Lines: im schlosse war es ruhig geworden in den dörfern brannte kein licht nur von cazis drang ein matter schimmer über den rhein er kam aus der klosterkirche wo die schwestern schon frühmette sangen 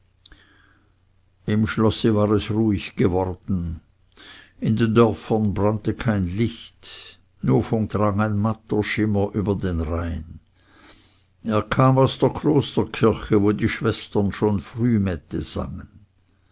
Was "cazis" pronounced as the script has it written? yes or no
no